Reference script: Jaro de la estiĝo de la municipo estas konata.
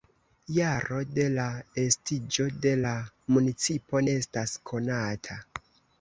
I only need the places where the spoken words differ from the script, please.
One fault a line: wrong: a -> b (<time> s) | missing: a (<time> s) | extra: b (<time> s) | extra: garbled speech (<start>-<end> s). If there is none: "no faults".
no faults